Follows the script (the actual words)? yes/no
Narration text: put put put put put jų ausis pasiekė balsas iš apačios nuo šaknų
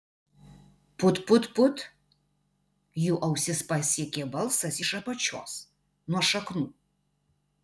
no